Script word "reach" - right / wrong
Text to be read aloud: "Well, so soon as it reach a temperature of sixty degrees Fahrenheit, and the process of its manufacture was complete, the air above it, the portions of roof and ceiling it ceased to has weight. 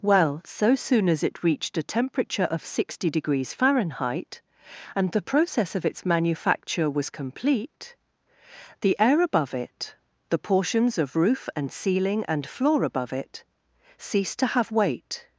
wrong